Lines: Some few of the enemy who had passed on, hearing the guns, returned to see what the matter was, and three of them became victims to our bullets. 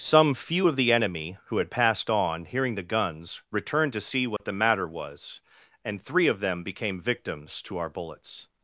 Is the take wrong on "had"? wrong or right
right